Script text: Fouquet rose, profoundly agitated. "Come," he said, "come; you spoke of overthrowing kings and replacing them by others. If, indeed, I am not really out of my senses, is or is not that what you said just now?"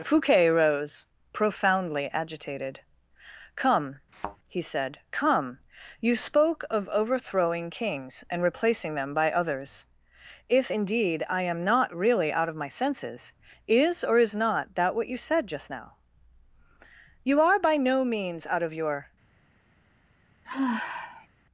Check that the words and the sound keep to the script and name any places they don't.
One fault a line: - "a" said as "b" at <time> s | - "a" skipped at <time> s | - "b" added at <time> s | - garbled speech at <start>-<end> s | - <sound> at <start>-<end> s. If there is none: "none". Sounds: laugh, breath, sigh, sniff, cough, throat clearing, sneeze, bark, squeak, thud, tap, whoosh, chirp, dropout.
- thud at 4.1-4.4 s
- "You are by no means out of your" added at 17.2 s
- sigh at 20.4-21.3 s